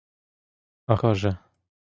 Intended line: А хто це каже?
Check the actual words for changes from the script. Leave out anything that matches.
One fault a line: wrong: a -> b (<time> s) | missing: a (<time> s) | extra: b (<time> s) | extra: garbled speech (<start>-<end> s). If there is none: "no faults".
missing: хто це (0.9 s)